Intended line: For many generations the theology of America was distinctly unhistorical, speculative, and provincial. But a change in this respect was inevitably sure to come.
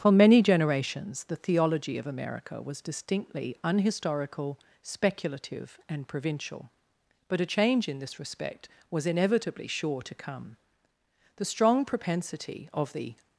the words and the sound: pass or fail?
fail